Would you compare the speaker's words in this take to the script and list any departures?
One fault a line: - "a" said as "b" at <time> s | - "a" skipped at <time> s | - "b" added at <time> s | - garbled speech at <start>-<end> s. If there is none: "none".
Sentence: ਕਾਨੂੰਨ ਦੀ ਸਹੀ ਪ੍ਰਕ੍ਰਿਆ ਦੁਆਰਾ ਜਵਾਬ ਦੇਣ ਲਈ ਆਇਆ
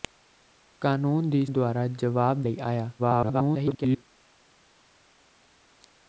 - "ਸਹੀ ਪ੍ਰਕ੍ਰਿਆ" skipped at 1.4 s
- "ਦੇਣ" skipped at 2.4 s
- garbled speech at 3.0-4.1 s